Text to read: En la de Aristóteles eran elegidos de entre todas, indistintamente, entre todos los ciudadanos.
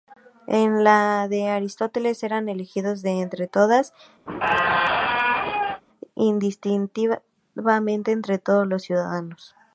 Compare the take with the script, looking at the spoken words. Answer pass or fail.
pass